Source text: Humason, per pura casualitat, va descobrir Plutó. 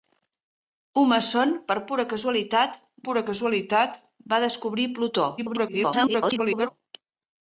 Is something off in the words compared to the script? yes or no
yes